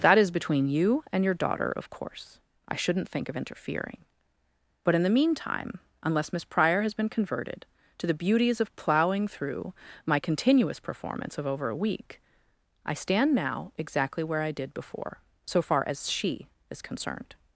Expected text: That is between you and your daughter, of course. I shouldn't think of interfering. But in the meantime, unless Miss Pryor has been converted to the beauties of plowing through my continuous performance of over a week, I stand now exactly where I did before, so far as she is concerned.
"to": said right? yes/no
yes